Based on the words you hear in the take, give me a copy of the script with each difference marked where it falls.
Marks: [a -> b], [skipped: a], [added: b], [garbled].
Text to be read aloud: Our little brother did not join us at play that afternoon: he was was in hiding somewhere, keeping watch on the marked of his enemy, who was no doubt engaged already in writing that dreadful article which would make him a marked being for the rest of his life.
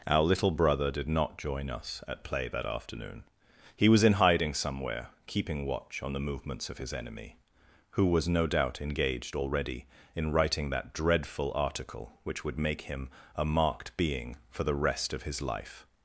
Our little brother did not join us at play that afternoon: he was [skipped: was] in hiding somewhere, keeping watch on the [marked -> movements] of his enemy, who was no doubt engaged already in writing that dreadful article which would make him a marked being for the rest of his life.